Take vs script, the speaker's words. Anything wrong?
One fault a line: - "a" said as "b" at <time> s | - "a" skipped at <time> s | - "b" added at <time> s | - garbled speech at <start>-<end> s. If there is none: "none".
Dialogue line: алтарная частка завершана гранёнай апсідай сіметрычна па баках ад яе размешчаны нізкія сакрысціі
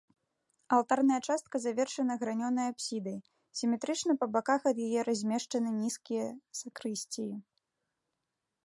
none